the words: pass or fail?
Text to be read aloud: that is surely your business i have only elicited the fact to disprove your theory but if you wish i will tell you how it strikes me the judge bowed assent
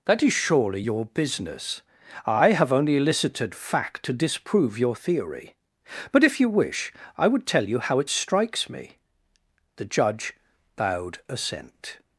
fail